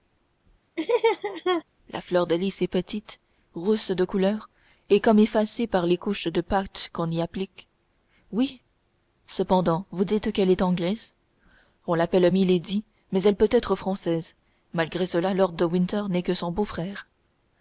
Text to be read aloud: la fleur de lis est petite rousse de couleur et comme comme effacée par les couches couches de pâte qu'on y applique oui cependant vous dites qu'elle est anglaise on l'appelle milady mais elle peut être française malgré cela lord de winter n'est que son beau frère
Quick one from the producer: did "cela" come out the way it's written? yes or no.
yes